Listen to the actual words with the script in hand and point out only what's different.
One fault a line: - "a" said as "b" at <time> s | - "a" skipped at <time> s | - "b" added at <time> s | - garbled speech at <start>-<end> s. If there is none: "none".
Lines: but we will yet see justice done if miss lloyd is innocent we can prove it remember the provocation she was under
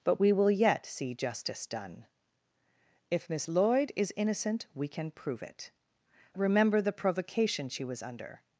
none